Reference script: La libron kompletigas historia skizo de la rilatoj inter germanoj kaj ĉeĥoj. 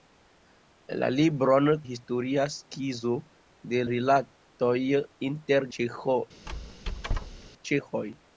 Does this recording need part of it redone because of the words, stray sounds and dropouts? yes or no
yes